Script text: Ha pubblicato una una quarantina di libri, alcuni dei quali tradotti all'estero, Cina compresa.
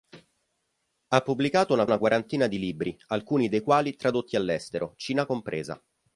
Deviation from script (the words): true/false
false